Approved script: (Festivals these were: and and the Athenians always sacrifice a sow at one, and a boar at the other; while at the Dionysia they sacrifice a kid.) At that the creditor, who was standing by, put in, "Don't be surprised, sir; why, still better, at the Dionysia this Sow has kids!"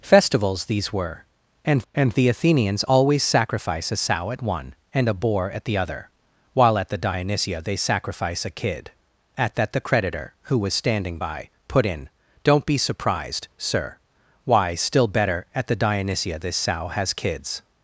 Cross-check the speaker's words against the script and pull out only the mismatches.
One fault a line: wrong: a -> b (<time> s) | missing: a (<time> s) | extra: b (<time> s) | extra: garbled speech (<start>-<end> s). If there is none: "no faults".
no faults